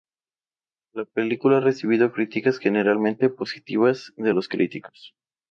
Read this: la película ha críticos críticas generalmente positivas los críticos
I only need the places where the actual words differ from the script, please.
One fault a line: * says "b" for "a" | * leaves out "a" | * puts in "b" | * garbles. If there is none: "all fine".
* says "recibido" for "críticos"
* puts in "de"